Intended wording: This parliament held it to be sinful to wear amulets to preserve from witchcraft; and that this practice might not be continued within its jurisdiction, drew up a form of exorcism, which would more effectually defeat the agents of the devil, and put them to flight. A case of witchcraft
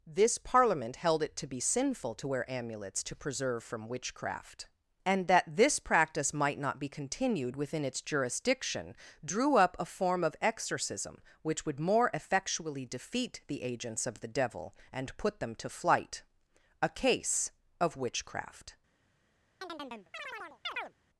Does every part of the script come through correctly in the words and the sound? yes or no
no